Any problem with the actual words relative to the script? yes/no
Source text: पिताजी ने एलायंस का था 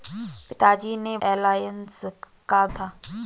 no